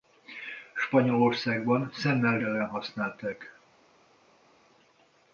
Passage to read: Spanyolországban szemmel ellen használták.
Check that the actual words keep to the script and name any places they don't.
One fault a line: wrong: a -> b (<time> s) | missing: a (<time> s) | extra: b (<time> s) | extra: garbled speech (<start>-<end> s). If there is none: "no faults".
no faults